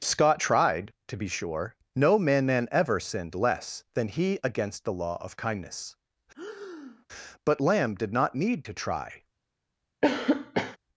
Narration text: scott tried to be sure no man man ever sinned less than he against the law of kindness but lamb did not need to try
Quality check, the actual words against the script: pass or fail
pass